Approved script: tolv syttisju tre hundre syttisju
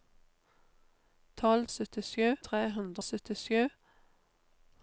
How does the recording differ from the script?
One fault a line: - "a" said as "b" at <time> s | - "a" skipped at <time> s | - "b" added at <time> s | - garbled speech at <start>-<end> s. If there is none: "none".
none